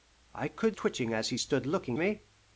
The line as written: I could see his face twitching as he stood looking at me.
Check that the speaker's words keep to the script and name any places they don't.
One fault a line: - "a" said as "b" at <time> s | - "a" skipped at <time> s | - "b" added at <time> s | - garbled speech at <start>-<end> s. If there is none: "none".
- "see his face" skipped at 0.8 s
- "at" skipped at 2.0 s